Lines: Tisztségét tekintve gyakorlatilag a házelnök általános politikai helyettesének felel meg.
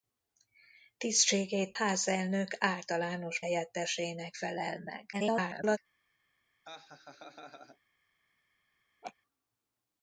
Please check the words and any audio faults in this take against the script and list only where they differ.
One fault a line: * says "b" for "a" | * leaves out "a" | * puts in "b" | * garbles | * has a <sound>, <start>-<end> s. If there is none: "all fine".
* leaves out "tekintve gyakorlatilag a"
* leaves out "politikai"
* garbles
* has a laugh, 6.6-7.8 s
* has a laugh, 9.0-9.1 s